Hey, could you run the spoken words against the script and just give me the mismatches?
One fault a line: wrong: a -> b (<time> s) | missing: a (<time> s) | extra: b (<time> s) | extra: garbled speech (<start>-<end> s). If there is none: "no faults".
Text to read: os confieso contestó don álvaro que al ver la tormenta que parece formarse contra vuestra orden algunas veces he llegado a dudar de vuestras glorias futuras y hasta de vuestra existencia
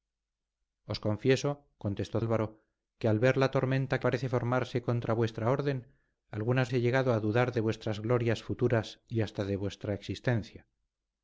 missing: don (2.2 s)
missing: que (4.0 s)
missing: veces (6.7 s)